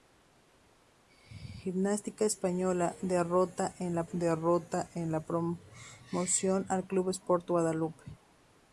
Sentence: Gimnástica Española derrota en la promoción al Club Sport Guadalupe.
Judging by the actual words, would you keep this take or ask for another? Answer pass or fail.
fail